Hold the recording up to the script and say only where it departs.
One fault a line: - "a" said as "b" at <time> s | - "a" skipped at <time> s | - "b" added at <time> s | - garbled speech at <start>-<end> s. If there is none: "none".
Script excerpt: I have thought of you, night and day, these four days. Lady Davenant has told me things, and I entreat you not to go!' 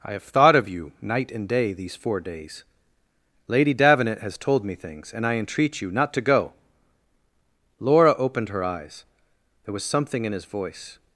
- "Laura opened her eyes there was something in his voice" added at 7.8 s